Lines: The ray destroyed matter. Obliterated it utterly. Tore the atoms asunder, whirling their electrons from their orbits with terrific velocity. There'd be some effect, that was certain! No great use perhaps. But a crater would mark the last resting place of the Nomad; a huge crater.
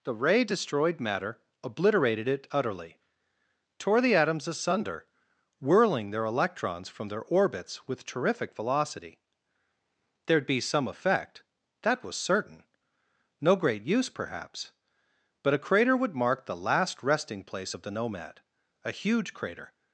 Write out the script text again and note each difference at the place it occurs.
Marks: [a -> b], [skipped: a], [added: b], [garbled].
The ray destroyed matter. Obliterated it utterly. Tore the atoms asunder, whirling their electrons from their orbits with terrific velocity. There'd be some effect, that was certain! No great use perhaps. But a crater would mark the last resting place of the Nomad; a huge crater.